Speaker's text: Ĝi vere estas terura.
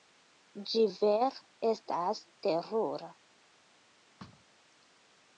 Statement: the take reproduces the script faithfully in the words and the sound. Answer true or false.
false